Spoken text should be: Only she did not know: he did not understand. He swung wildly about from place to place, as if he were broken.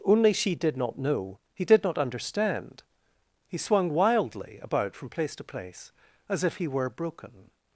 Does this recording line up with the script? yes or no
yes